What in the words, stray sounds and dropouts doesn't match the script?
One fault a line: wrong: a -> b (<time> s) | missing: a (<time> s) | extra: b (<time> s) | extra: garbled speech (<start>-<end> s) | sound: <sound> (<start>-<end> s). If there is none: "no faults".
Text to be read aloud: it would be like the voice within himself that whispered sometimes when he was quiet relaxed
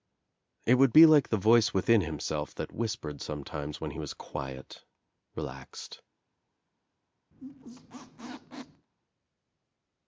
sound: squeak (7.3-8.9 s)